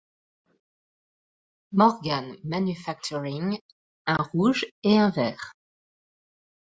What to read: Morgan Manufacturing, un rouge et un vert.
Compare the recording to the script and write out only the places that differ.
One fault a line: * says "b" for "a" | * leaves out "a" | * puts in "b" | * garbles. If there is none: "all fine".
all fine